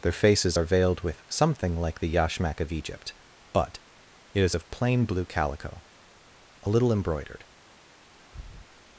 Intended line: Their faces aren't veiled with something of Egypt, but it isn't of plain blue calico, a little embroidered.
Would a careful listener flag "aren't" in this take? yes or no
yes